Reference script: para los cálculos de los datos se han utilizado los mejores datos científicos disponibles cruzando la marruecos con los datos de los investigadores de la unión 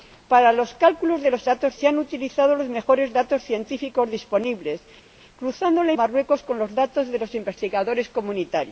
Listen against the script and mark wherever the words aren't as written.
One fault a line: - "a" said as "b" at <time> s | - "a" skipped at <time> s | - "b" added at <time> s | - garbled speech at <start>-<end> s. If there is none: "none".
none